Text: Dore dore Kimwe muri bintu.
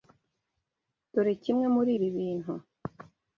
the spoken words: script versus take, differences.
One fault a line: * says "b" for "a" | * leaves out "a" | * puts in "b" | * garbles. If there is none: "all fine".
* leaves out "dore"
* puts in "ibi"